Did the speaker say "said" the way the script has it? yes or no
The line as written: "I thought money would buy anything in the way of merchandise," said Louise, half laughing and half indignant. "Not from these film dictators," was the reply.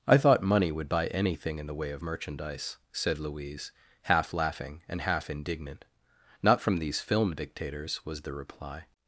yes